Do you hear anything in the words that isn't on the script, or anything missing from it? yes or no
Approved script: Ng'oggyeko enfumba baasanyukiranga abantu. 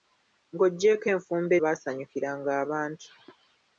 no